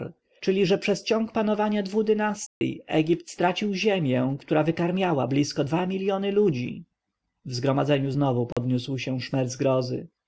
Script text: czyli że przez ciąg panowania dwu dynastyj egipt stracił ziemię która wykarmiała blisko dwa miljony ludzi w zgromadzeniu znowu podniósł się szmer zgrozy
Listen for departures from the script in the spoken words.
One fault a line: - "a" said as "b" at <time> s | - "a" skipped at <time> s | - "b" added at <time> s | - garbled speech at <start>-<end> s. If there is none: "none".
none